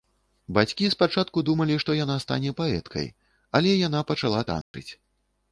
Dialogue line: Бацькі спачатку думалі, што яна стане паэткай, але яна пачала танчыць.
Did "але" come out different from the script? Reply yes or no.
no